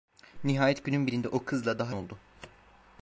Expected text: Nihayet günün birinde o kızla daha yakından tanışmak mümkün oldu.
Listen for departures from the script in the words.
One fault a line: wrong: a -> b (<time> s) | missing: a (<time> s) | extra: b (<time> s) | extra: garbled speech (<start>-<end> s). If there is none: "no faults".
missing: yakından tanışmak mümkün (2.0 s)